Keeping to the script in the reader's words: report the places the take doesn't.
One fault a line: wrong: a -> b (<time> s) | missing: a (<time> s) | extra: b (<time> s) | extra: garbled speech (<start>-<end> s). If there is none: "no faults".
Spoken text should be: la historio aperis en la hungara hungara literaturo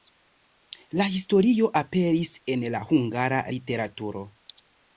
missing: hungara (3.4 s)